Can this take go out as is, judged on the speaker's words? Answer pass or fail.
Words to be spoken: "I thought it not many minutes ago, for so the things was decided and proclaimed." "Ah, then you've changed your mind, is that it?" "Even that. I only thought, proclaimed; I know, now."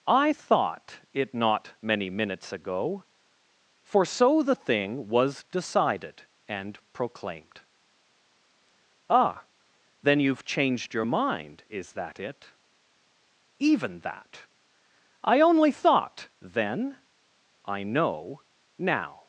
fail